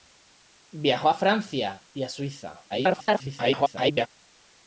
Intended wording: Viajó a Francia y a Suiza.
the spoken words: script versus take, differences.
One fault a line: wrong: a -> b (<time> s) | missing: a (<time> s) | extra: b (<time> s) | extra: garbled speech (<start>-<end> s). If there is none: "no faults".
extra: garbled speech (2.7-4.1 s)